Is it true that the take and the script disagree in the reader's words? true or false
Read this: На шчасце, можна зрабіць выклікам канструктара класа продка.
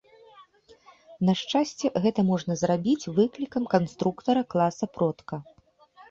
true